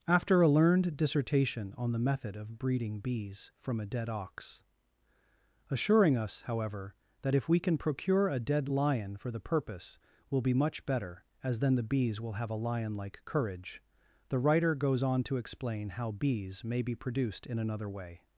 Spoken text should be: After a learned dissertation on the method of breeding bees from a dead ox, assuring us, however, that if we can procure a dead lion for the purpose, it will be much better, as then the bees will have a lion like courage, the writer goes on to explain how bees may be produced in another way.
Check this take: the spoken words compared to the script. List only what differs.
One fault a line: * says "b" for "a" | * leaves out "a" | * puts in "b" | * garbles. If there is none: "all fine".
* leaves out "it"